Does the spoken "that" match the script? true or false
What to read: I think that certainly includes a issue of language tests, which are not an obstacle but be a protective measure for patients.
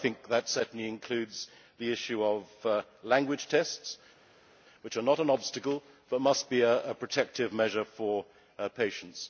true